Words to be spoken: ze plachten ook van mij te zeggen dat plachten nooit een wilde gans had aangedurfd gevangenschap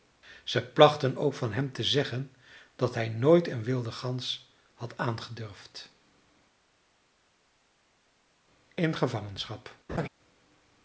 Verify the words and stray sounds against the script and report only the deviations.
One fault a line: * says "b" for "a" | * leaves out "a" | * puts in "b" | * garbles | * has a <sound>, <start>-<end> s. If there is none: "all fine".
* says "hem" for "mij"
* says "hij" for "plachten"
* puts in "in"
* has a laugh, 9.9-10.1 s